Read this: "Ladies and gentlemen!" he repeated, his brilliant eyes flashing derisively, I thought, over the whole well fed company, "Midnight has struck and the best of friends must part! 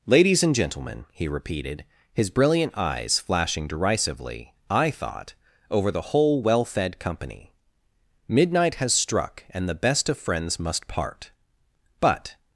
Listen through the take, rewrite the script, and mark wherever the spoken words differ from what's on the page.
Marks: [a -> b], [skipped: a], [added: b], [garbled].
"Ladies and gentlemen!" he repeated, his brilliant eyes flashing derisively, I thought, over the whole well fed company, "Midnight has struck and the best of friends must part! [added: But]